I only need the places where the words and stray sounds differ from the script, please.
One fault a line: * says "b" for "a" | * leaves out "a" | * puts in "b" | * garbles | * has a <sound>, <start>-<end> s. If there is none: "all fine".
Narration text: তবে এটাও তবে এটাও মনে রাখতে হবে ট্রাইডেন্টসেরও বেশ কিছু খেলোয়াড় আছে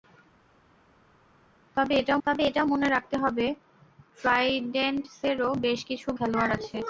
all fine